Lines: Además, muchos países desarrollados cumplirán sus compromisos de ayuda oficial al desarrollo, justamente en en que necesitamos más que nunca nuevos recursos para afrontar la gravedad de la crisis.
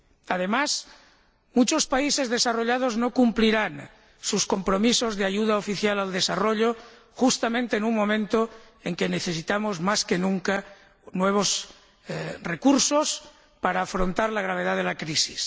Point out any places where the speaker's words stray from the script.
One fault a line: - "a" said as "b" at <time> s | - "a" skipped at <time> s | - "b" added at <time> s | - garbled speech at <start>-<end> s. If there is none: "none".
- "no" added at 3.0 s
- "un momento" added at 7.8 s